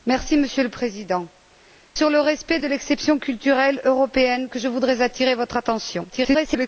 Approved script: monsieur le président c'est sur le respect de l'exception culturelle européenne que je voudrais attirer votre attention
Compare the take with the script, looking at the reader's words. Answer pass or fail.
fail